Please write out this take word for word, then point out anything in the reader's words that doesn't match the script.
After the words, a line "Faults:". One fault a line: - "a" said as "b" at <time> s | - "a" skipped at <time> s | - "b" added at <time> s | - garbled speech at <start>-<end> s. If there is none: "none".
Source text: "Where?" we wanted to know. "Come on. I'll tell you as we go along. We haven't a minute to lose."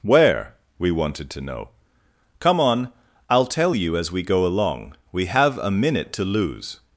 "Where?" we wanted to know. "Come on. I'll tell you as we go along. We have a minute to lose."
Faults:
- "haven't" said as "have" at 5.3 s